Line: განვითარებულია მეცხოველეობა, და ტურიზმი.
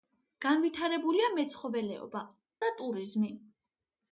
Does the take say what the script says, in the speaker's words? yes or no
yes